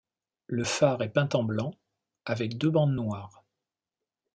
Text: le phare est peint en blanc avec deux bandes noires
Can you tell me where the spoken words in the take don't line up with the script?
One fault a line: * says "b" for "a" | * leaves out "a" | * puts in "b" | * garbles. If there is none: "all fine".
all fine